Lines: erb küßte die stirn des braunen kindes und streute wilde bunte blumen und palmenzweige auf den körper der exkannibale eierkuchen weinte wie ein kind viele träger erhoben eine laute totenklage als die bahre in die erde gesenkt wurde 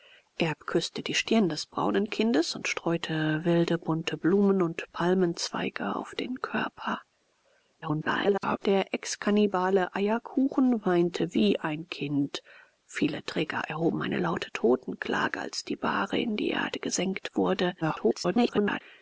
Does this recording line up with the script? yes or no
no